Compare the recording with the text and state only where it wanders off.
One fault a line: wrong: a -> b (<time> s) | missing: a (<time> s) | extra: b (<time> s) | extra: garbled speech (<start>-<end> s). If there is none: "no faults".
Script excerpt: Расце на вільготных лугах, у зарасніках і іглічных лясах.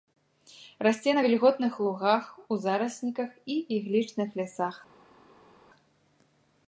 no faults